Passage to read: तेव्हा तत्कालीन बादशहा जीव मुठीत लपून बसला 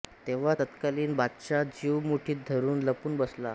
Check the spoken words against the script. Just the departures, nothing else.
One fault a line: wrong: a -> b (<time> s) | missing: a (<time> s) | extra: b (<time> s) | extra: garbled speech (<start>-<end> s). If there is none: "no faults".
extra: धरून (2.5 s)